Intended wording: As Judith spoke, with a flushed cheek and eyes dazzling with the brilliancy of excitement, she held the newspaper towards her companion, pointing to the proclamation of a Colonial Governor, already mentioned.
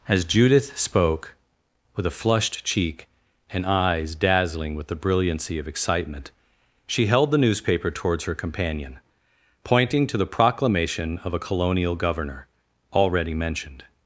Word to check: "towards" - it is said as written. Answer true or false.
true